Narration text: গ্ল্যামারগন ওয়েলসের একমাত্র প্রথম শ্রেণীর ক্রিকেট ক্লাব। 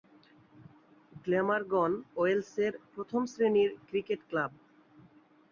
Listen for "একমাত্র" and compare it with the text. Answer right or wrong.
wrong